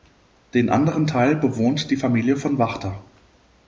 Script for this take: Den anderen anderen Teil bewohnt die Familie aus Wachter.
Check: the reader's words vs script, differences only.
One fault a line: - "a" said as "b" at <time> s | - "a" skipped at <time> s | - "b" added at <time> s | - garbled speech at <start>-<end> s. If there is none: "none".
- "anderen" skipped at 1.1 s
- "aus" said as "von" at 2.4 s